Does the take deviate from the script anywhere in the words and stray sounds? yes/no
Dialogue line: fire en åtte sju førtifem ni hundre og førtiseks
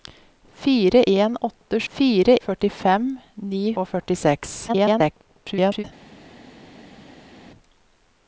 yes